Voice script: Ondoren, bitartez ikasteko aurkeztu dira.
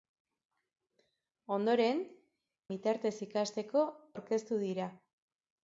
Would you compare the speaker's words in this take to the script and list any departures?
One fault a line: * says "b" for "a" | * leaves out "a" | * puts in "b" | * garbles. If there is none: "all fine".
all fine